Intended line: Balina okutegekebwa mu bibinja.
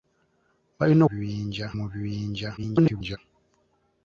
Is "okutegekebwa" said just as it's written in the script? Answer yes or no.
no